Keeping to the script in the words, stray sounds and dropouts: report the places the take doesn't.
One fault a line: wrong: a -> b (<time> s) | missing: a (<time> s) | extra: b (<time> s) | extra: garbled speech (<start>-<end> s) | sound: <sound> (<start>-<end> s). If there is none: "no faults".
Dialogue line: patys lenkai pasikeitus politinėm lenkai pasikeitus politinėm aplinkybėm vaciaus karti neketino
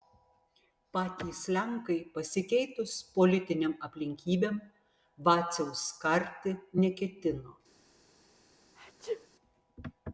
missing: lenkai pasikeitus politinėm (3.8 s)
sound: sneeze (8.8-9.3 s)